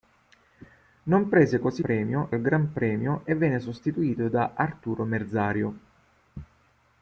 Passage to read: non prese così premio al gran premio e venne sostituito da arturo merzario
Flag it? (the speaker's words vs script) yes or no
no